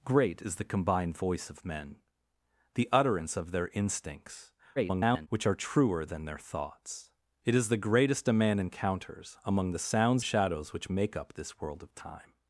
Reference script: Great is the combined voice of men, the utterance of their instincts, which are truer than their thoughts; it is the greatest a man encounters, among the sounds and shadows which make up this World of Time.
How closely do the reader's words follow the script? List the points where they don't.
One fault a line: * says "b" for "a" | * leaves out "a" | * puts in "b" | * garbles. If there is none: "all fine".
* garbles
* leaves out "and"